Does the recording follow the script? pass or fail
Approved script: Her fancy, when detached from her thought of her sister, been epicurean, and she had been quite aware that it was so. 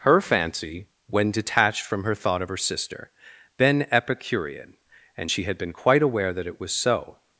pass